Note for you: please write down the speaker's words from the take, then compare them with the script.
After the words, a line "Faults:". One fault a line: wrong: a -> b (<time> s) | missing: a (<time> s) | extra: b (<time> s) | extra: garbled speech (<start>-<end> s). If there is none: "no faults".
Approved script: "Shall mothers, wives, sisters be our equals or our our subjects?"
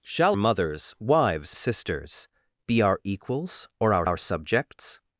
"Shall mothers, wives, sisters be our equals or our our subjects?"
Faults:
no faults